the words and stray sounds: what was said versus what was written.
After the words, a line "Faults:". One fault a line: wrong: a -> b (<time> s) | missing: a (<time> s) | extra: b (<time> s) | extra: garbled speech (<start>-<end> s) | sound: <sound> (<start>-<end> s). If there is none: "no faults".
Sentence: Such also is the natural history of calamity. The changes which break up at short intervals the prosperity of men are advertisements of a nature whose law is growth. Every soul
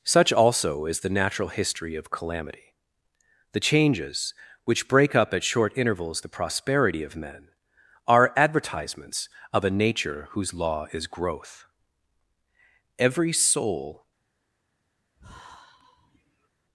Such also is the natural history of calamity. The changes which break up at short intervals the prosperity of men are advertisements of a nature whose law is growth. Every soul
Faults:
sound: sigh (15.2-16.5 s)